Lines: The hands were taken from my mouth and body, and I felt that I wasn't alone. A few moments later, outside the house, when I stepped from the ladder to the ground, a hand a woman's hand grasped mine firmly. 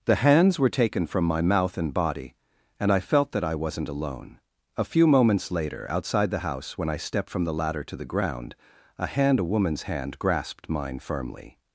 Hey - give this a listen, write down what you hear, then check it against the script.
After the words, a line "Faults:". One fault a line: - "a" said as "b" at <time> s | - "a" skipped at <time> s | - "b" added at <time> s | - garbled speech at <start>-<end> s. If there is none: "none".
The hands were taken from my mouth and body, and I felt that I wasn't alone. A few moments later, outside the house, when I stepped from the ladder to the ground, a hand a woman's hand grasped mine firmly.
Faults:
none